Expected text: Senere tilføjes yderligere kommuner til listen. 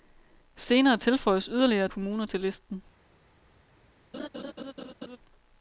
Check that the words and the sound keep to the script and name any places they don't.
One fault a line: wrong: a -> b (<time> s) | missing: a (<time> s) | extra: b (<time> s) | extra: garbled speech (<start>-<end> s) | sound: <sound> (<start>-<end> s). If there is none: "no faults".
sound: laugh (4.1-5.2 s)